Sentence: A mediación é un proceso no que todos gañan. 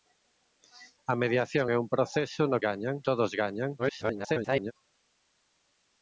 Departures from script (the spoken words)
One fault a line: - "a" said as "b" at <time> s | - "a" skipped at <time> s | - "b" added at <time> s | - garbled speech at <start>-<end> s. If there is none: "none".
- "que" said as "gañan" at 2.7 s
- garbled speech at 3.8-4.7 s